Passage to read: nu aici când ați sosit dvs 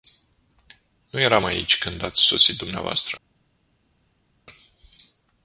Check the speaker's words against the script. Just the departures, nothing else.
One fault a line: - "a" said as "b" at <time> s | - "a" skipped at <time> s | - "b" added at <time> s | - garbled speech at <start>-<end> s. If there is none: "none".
- "eram" added at 1.2 s